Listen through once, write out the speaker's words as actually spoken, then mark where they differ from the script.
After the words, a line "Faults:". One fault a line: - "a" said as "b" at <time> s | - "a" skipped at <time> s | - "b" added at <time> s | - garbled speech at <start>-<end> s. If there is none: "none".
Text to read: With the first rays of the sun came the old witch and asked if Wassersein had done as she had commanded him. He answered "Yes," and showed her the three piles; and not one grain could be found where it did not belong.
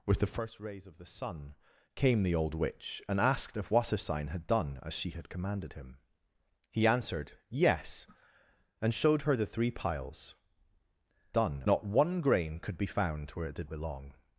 With the first rays of the sun came the old witch and asked if Wassersein had done as she had commanded him. He answered "Yes," and showed her the three piles; done not one grain could be found where it did belong.
Faults:
- "and" said as "done" at 11.3 s
- "not" skipped at 13.7 s